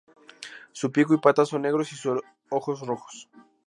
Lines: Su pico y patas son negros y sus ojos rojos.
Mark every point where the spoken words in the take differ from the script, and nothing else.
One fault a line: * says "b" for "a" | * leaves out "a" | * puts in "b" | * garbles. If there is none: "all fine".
all fine